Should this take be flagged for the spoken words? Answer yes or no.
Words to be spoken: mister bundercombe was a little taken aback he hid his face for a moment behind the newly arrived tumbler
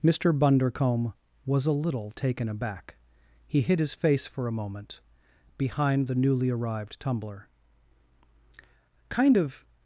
yes